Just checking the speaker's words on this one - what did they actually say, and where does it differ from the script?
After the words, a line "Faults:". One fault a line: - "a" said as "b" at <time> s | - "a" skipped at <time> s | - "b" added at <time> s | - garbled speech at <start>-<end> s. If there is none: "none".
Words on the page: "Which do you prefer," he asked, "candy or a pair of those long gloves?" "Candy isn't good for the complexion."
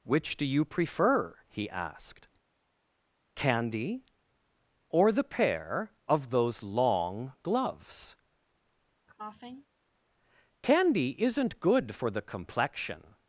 "Which do you prefer," he asked, "candy or the pair of those long gloves?" "Candy isn't good for the complexion."
Faults:
- "a" said as "the" at 5.1 s